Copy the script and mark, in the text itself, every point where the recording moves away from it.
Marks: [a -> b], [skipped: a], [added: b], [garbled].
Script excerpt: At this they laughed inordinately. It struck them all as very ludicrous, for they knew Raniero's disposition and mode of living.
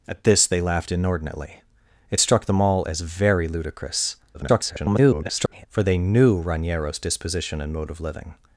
At this they laughed inordinately. It struck them all as very ludicrous, [garbled] for they knew Raniero's disposition and mode of living.